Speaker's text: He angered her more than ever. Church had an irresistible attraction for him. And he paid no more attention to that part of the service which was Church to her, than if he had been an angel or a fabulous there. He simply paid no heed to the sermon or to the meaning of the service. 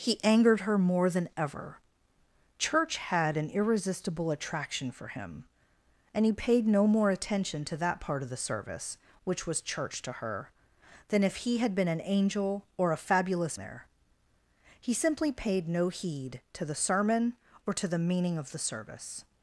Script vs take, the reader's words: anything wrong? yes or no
no